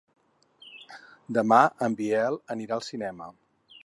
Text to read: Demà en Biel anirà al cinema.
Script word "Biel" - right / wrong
right